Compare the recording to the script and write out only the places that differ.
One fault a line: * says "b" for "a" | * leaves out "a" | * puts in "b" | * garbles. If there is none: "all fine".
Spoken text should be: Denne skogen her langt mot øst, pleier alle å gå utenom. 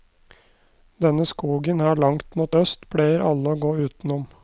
all fine